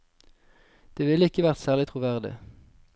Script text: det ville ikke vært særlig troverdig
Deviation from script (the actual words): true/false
false